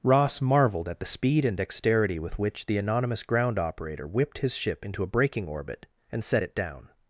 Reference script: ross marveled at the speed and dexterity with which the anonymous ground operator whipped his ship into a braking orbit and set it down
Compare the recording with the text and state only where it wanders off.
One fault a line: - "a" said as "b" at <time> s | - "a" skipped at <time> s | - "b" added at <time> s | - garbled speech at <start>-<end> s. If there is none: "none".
none